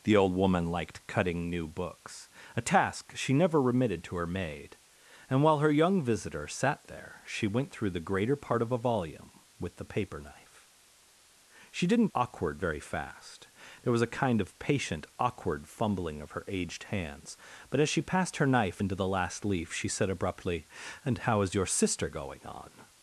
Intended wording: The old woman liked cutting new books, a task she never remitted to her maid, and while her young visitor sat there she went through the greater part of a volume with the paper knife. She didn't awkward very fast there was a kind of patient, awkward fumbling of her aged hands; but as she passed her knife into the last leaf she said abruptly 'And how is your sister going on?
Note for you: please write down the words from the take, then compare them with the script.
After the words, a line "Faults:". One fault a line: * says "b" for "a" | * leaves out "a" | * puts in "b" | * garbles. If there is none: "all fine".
The old woman liked cutting new books, a task she never remitted to her maid, and while her young visitor sat there she went through the greater part of a volume with the paper knife. She didn't awkward very fast there was a kind of patient, awkward fumbling of her aged hands; but as she passed her knife into the last leaf she said abruptly 'And how is your sister going on?
Faults:
all fine